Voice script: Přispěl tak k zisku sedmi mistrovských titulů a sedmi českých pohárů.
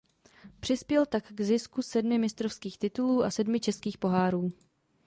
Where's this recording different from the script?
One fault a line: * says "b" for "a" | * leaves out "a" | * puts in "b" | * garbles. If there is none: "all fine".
all fine